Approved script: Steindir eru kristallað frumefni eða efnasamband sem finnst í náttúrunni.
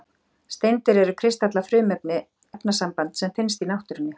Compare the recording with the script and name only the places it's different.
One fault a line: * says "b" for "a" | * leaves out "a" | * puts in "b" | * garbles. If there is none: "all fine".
* leaves out "eða"